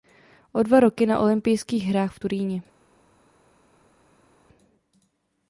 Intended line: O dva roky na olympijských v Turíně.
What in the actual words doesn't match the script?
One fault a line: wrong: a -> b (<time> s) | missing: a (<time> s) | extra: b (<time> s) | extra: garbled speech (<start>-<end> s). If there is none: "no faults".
extra: hrách (1.8 s)